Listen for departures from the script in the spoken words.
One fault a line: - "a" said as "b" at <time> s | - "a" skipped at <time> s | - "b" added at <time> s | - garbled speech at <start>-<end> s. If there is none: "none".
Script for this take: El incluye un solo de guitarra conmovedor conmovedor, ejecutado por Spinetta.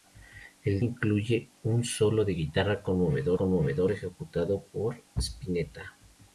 none